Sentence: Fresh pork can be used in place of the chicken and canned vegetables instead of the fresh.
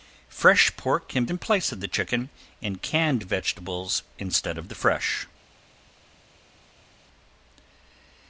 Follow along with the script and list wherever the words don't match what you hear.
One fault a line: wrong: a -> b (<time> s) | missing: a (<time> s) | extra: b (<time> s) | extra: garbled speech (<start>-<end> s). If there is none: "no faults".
missing: be used (1.2 s)